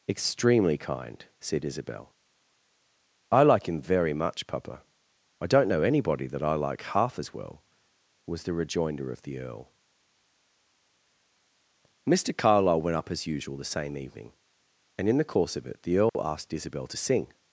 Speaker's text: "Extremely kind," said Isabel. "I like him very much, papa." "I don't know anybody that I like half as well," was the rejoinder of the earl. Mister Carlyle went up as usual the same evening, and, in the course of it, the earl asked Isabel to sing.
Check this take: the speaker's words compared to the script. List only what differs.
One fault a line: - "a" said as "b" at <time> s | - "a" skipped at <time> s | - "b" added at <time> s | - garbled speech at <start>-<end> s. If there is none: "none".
none